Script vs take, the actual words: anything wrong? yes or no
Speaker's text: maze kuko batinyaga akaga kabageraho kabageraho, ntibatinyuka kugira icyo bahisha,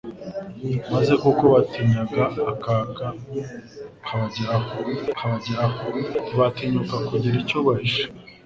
no